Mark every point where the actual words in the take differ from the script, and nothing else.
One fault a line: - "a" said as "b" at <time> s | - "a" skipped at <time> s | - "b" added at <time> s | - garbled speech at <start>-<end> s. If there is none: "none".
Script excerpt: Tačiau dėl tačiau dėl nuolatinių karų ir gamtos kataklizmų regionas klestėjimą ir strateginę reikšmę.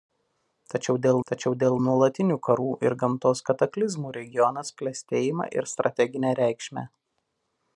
none